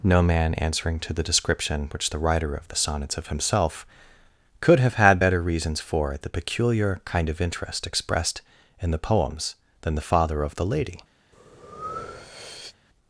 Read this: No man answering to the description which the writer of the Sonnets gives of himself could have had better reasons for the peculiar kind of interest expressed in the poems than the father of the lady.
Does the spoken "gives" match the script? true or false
false